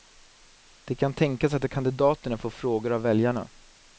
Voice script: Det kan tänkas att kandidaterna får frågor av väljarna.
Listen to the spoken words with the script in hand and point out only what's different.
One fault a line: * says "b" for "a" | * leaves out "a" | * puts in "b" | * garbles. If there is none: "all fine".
all fine